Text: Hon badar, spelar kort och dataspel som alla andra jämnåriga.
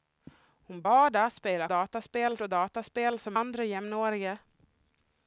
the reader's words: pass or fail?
fail